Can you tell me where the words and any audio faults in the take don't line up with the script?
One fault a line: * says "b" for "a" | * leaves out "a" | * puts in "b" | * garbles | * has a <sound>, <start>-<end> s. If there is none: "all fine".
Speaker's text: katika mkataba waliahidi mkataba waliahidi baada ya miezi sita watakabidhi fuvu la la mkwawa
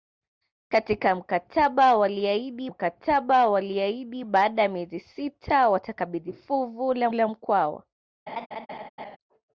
* has a laugh, 8.3-9.2 s